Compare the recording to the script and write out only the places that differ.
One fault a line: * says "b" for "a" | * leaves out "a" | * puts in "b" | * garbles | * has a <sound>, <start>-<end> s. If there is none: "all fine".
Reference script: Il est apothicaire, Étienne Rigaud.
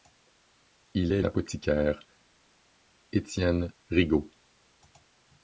all fine